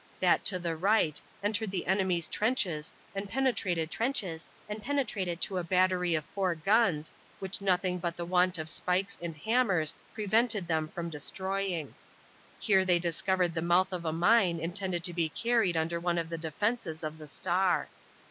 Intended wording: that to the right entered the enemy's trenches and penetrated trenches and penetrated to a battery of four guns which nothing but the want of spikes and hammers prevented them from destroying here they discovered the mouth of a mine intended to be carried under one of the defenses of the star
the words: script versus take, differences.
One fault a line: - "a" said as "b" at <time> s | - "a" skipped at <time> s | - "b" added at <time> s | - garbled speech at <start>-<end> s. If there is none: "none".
none